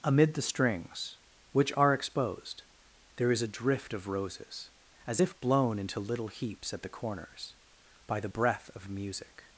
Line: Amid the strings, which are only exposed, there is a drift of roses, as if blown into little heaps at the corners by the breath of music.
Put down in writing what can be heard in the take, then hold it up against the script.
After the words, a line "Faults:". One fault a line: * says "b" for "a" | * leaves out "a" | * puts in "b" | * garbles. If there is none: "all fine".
Amid the strings, which are exposed, there is a drift of roses, as if blown into little heaps at the corners by the breath of music.
Faults:
* leaves out "only"